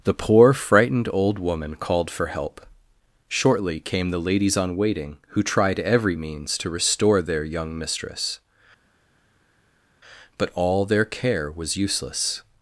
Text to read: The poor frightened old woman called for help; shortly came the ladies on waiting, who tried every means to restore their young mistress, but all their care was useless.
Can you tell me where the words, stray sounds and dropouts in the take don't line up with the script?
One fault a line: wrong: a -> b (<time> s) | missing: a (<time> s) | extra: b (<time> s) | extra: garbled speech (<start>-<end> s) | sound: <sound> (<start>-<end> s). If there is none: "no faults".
no faults